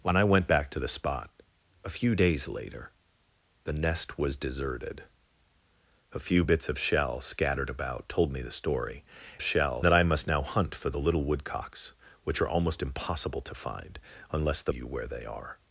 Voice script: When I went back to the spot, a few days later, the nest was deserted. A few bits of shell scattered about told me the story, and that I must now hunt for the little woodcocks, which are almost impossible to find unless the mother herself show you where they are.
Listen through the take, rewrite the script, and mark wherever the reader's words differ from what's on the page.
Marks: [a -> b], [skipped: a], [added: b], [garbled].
When I went back to the spot, a few days later, the nest was deserted. A few bits of shell scattered about told me the story, [and -> shell] that I must now hunt for the little woodcocks, which are almost impossible to find unless the [skipped: mother herself show] you where they are.